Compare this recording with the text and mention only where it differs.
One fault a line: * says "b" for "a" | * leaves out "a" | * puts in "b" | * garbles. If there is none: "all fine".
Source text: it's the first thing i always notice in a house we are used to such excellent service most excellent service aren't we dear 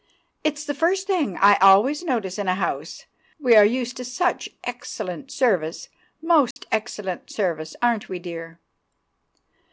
all fine